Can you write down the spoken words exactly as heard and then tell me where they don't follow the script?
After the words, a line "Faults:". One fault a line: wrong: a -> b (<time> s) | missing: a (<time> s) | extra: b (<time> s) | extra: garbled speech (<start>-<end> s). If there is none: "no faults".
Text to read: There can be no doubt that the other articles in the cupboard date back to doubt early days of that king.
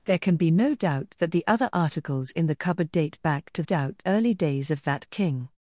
There can be no doubt that the other articles in the cupboard date back to doubt early days of that king.
Faults:
no faults